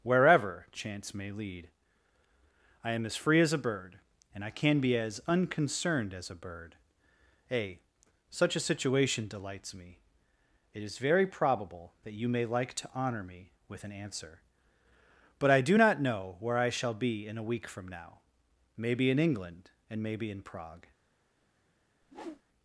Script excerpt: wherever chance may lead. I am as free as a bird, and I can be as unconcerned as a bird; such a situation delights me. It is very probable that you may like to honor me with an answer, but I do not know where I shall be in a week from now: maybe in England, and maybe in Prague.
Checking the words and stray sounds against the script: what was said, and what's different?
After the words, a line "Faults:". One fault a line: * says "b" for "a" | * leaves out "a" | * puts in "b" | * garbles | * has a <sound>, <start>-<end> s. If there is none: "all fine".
wherever chance may lead. I am as free as a bird, and I can be as unconcerned as a bird; a such a situation delights me. It is very probable that you may like to honor me with an answer, but I do not know where I shall be in a week from now: maybe in England, and maybe in Prague.
Faults:
* puts in "a"
* has a whoosh, 22.0-22.4 s